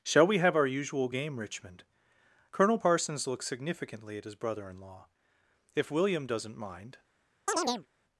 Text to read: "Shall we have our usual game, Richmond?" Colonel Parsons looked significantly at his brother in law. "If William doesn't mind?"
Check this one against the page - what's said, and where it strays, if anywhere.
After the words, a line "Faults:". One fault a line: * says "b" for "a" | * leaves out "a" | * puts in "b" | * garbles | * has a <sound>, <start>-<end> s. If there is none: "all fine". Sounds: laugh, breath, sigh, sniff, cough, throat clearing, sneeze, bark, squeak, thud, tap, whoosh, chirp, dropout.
"Shall we have our usual game, Richmond?" Colonel Parsons looks significantly at his brother in law. "If William doesn't mind?"
Faults:
* says "looks" for "looked"
* has a chirp, 7.5-7.9 s